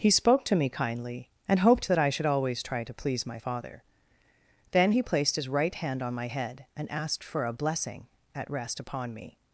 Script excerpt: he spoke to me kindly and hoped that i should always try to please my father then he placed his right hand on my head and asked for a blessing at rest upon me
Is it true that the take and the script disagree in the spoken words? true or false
false